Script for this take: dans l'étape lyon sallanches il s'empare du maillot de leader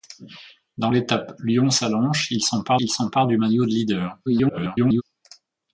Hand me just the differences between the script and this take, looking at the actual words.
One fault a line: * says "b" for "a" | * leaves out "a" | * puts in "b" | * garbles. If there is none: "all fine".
* puts in "il s'empare"
* garbles